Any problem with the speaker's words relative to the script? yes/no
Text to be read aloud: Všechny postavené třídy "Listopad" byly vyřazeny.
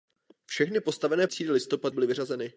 no